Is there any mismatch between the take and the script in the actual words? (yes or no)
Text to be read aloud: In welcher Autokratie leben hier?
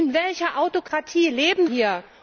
no